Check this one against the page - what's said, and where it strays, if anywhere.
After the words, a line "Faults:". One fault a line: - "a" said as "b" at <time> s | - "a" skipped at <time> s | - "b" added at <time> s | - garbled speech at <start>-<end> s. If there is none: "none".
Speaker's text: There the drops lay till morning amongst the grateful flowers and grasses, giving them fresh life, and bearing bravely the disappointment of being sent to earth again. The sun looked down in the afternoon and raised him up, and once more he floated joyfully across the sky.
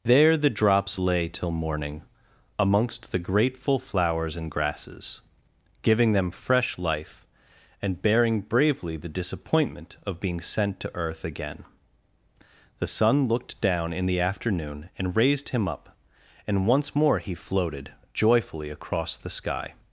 There the drops lay till morning amongst the grateful flowers and grasses, giving them fresh life, and bearing bravely the disappointment of being sent to earth again. The sun looked down in the afternoon and raised him up, and once more he floated joyfully across the sky.
Faults:
none